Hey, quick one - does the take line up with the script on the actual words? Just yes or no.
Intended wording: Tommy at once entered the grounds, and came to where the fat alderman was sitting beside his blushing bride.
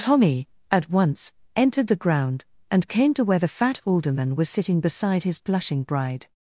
no